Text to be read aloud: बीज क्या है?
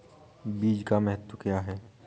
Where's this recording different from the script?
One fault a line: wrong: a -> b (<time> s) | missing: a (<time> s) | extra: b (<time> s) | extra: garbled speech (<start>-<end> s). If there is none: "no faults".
extra: का महत्व (0.8 s)